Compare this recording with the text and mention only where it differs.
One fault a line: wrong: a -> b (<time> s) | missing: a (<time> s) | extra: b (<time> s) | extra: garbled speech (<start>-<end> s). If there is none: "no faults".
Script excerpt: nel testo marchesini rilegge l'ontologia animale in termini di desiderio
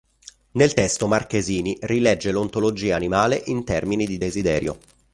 no faults